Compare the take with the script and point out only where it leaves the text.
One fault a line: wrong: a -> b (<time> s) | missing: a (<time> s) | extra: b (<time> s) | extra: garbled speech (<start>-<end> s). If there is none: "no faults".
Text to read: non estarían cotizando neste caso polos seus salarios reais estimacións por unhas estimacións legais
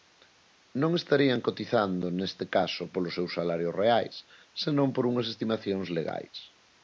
wrong: estimacións -> senón (4.6 s)